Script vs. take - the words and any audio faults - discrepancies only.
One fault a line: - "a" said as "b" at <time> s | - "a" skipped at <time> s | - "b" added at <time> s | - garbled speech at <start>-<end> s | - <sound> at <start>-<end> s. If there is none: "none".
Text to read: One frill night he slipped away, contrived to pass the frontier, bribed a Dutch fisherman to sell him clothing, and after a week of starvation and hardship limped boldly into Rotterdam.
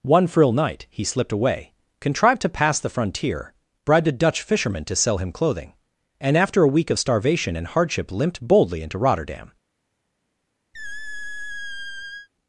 - squeak at 10.7-12.3 s